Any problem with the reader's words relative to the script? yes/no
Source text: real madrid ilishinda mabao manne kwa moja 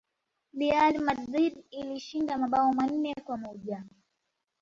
no